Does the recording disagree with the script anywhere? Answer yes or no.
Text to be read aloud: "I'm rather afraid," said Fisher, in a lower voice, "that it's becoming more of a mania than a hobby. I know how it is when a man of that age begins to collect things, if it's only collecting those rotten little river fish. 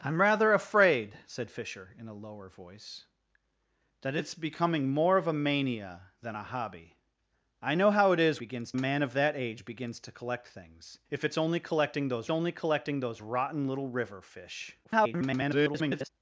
yes